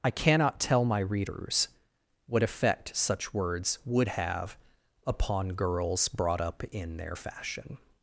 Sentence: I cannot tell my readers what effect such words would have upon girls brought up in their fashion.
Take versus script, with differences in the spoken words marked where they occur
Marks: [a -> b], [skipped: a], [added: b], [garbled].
I cannot tell my readers what effect such words would have upon girls brought up in their fashion.